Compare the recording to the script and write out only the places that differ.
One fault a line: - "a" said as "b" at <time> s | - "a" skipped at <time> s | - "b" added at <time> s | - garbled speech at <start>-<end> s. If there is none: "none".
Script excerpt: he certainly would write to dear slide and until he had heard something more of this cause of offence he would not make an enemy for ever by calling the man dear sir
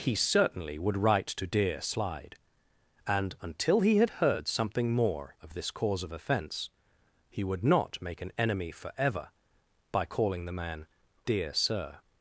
none